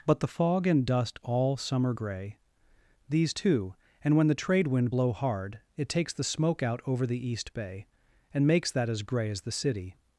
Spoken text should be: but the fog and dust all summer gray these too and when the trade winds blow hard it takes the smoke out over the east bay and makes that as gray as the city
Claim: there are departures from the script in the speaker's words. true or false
true